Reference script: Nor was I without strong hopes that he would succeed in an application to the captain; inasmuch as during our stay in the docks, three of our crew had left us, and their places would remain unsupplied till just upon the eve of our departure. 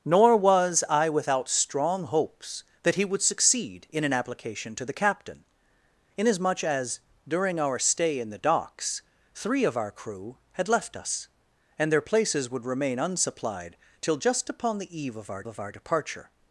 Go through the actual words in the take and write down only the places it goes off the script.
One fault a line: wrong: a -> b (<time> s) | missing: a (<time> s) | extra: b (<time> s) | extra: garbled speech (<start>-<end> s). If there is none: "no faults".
extra: of our (15.5 s)